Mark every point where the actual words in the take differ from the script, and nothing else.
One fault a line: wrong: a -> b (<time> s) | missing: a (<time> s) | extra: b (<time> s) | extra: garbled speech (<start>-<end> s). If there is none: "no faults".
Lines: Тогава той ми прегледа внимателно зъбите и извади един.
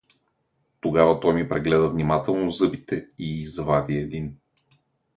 no faults